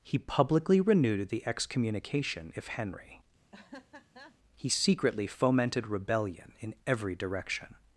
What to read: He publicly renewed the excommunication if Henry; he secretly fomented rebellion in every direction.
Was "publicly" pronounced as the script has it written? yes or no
yes